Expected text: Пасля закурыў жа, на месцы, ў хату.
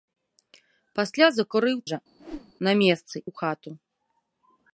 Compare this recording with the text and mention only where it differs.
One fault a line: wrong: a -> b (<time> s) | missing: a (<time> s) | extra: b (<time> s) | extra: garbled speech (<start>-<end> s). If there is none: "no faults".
no faults